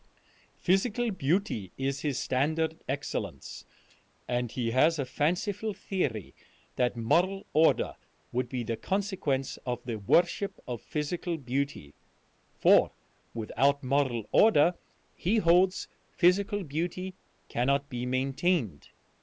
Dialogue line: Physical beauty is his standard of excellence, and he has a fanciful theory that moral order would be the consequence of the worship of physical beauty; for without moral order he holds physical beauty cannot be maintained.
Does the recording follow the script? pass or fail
fail